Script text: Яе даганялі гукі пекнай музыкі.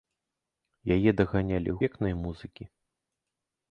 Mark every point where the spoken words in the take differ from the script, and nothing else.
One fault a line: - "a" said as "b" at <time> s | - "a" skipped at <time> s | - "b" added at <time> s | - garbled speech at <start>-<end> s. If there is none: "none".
- "гукі" skipped at 1.8 s